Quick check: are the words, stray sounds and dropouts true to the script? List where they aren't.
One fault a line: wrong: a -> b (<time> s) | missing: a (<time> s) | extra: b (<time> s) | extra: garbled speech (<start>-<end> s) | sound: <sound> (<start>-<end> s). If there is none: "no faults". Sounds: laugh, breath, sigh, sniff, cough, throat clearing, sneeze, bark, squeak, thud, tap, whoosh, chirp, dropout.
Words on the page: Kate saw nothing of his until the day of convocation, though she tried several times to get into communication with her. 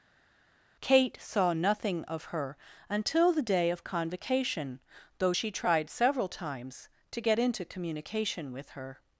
wrong: his -> her (2.3 s)